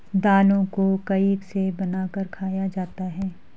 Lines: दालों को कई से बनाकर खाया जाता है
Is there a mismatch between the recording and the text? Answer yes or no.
no